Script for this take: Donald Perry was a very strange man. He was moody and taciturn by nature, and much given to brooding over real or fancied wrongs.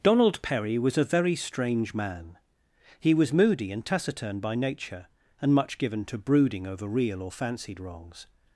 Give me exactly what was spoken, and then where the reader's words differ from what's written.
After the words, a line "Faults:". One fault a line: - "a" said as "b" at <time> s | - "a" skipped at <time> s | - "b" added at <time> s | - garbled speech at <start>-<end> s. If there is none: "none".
Donald Perry was a very strange man. He was moody and taciturn by nature, and much given to brooding over real or fancied wrongs.
Faults:
none